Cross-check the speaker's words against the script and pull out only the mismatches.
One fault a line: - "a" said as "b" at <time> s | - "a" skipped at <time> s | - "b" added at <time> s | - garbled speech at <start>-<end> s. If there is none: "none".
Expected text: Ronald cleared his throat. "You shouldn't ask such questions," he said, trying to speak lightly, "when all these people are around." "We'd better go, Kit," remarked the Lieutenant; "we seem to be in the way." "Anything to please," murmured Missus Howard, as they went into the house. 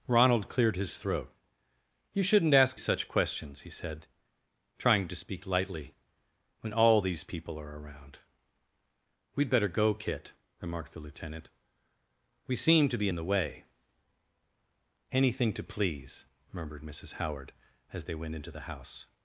none